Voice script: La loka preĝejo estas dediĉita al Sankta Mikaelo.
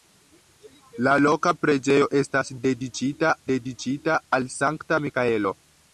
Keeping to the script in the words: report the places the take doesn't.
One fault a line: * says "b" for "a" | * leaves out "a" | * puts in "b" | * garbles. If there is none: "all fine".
* puts in "dediĉita"